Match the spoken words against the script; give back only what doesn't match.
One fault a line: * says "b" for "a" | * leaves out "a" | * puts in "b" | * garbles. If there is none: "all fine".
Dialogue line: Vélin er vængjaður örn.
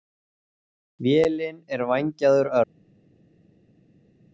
all fine